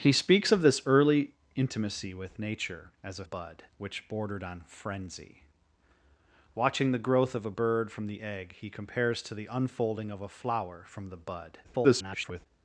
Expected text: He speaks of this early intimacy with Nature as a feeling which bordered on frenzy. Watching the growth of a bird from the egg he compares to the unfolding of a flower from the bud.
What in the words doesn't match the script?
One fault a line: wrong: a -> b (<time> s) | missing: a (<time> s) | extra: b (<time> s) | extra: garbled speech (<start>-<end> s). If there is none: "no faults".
wrong: feeling -> bud (3.2 s)
extra: garbled speech (11.6-12.5 s)